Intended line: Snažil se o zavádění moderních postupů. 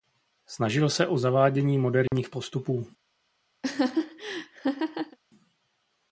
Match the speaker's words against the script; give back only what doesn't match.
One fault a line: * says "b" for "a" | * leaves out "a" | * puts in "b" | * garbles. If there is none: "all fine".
all fine